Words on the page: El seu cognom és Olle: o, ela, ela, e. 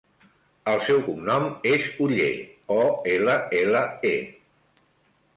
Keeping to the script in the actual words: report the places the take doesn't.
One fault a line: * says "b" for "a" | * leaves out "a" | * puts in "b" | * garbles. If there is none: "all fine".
all fine